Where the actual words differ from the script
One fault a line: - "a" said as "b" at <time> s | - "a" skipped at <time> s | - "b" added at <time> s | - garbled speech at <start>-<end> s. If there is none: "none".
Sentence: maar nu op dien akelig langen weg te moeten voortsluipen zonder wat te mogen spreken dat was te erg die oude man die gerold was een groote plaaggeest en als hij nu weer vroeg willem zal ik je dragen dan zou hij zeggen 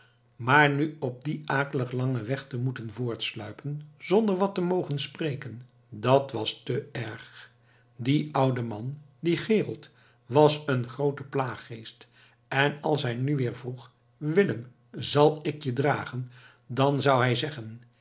none